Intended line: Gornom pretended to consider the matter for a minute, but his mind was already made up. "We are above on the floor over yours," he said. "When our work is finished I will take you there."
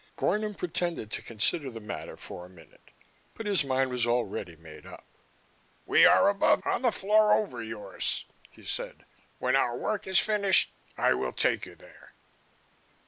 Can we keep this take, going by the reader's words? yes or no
yes